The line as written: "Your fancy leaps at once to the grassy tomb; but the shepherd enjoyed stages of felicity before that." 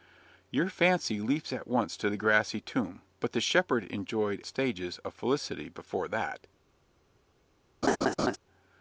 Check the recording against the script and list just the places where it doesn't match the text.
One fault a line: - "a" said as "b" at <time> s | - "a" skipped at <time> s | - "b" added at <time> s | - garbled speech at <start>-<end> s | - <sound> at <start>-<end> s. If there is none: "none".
- laugh at 7.8-8.4 s